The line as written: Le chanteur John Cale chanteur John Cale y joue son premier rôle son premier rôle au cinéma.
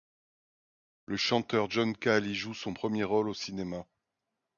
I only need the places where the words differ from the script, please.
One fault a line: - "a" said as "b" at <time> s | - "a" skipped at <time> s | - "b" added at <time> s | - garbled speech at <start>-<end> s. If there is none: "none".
- "chanteur John Cale" skipped at 2.2 s
- "son premier rôle" skipped at 3.3 s